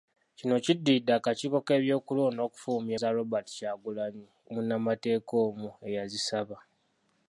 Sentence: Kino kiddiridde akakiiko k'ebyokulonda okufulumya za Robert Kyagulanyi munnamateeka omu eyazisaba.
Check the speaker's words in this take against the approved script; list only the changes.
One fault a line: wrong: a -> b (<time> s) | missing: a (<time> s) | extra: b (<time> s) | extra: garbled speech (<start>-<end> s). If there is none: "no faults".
no faults